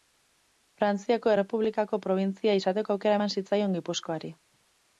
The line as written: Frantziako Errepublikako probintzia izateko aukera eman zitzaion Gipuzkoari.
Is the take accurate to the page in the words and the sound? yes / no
yes